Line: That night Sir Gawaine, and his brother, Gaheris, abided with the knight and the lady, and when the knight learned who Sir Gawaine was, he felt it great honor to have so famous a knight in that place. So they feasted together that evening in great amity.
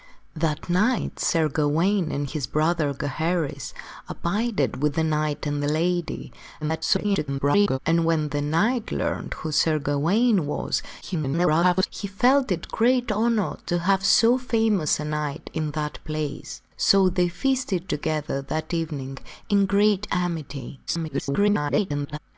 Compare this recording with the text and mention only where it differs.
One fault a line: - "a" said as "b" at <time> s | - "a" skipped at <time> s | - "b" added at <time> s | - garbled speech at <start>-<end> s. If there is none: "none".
- garbled speech at 6.6-7.8 s
- garbled speech at 11.0-11.9 s
- garbled speech at 20.9-22.2 s